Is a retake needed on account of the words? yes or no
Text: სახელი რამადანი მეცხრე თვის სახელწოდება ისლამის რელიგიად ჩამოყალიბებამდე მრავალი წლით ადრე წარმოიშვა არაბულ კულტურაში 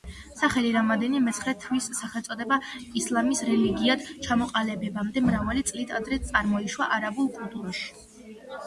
no